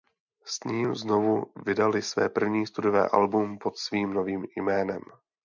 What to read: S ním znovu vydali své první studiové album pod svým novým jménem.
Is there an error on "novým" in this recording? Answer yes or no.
no